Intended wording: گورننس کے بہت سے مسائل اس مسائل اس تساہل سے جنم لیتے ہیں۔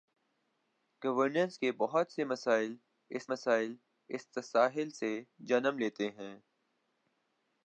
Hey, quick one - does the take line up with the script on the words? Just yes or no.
yes